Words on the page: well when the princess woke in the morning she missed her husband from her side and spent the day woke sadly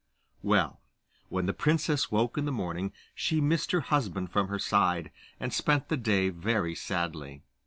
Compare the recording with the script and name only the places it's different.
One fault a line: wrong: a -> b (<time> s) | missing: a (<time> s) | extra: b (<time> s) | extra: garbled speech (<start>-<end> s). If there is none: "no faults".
wrong: woke -> very (6.3 s)